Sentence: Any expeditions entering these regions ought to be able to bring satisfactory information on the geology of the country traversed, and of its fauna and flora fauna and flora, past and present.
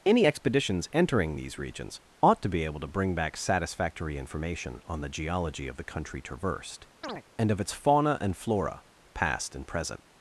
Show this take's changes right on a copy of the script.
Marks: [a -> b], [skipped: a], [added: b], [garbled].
Any expeditions entering these regions ought to be able to bring [added: back] satisfactory information on the geology of the country traversed, and of its fauna and flora [skipped: fauna and flora,] past and present.